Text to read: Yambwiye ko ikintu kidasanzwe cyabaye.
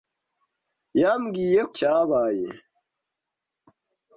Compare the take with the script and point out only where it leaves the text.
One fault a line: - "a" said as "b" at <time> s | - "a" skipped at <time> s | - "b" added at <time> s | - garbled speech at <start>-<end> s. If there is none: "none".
- "ko ikintu kidasanzwe" skipped at 1.6 s